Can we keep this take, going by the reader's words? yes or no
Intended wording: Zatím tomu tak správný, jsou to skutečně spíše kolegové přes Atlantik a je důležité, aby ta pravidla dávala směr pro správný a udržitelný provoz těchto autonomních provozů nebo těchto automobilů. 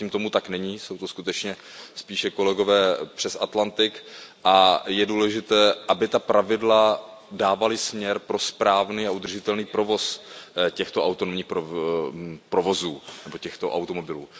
no